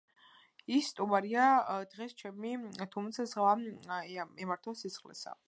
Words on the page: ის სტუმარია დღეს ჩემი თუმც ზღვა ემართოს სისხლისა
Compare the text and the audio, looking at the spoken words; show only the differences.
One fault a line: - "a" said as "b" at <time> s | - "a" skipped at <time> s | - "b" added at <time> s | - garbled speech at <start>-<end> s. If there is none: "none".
none